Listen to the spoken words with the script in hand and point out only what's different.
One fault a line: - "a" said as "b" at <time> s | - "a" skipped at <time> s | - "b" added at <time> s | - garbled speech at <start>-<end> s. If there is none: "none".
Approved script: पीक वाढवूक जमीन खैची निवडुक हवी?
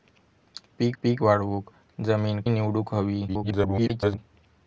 - "पीक" added at 1.0 s
- "खैची" skipped at 2.4 s
- garbled speech at 3.3-4.2 s